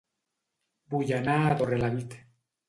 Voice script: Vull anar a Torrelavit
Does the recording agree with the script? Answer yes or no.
yes